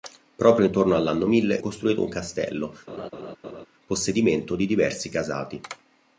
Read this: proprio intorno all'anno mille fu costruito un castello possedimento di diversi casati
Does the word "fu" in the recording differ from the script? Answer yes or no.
yes